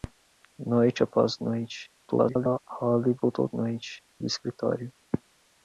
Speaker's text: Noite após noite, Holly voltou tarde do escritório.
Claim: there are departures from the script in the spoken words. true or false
true